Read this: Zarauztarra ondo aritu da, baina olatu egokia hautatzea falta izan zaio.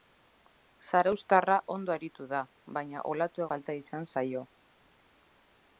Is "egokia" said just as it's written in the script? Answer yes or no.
no